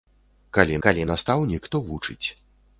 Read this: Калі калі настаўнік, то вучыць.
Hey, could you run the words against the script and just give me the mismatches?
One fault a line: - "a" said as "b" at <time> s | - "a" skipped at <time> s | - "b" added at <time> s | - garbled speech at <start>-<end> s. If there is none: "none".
none